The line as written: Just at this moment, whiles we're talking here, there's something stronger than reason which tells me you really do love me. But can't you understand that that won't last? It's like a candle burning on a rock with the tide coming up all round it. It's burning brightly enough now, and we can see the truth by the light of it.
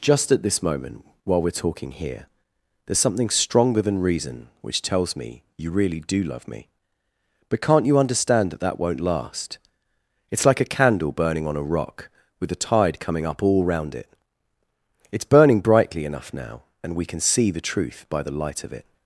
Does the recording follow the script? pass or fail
fail